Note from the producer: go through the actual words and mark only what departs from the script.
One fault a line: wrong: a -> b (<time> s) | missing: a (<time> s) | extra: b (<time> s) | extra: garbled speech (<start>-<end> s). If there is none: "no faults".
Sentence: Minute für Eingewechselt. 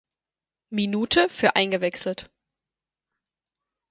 no faults